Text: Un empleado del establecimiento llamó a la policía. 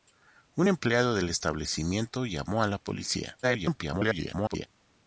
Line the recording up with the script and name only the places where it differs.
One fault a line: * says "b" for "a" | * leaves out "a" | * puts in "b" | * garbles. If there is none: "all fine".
* garbles